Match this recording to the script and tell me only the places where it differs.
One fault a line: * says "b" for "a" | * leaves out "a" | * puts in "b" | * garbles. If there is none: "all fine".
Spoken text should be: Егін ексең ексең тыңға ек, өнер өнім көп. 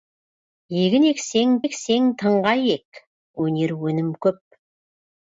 all fine